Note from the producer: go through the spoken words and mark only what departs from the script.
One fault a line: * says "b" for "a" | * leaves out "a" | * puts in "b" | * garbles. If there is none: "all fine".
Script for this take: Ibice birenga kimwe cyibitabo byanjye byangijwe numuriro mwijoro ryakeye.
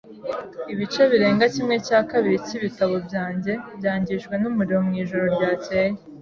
* puts in "cya kabiri"